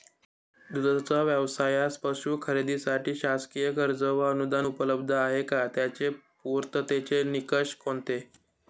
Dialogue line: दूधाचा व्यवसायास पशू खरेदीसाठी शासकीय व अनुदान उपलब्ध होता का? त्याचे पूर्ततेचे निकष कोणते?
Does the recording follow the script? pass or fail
fail